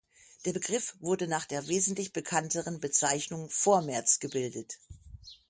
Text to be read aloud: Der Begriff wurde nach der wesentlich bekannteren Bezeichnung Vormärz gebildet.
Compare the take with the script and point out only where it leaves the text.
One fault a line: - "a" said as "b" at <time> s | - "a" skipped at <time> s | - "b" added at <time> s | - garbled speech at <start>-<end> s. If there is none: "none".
none